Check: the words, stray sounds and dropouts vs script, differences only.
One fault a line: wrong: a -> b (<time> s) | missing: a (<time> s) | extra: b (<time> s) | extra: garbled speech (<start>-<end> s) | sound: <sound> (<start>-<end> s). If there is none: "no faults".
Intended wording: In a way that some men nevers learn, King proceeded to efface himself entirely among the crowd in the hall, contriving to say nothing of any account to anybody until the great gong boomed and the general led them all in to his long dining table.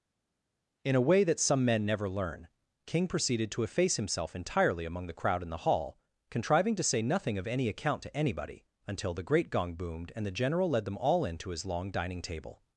wrong: nevers -> never (1.8 s)